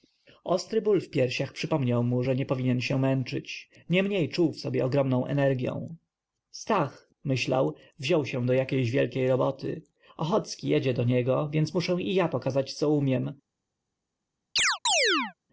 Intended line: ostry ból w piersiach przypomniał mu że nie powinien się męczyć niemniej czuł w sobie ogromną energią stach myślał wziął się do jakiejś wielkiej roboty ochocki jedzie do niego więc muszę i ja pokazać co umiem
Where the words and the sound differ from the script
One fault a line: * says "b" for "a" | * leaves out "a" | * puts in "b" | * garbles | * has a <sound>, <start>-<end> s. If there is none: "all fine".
* has a chirp, 14.6-15.3 s